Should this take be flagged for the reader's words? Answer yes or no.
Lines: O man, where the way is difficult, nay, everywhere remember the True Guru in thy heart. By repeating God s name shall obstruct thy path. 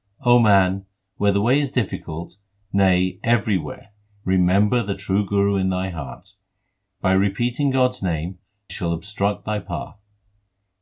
no